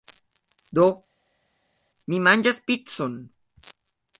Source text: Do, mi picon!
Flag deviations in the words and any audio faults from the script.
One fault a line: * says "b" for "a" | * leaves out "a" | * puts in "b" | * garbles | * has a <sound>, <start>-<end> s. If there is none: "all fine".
* puts in "manĝas"